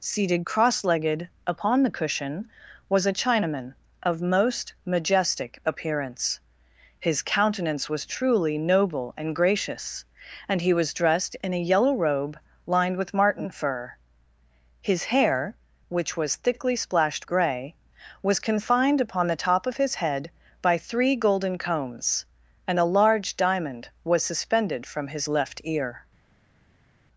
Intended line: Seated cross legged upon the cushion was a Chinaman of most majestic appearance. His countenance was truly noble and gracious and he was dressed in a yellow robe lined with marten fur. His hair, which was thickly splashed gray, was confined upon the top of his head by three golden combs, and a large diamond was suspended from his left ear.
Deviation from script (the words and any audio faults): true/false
false